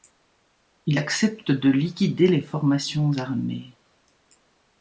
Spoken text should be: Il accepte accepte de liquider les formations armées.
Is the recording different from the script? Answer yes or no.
yes